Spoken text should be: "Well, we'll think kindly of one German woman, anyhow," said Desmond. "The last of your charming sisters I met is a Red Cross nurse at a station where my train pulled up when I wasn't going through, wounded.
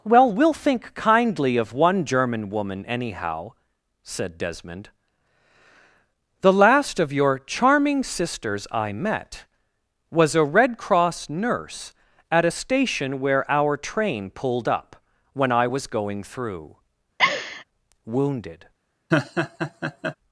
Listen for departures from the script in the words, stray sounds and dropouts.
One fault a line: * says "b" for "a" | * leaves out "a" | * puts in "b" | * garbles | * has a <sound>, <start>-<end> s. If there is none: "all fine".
* says "was" for "is"
* says "our" for "my"
* says "was" for "wasn't"
* has a laugh, 17.2-17.6 s
* has a laugh, 19.1-20.2 s